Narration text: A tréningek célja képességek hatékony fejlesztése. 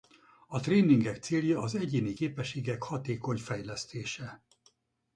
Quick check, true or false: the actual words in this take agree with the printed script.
false